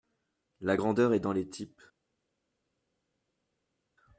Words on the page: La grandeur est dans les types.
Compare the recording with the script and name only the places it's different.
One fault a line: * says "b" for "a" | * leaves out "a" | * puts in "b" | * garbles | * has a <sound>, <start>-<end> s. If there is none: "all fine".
all fine